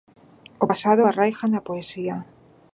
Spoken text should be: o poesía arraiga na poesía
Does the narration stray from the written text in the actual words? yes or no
yes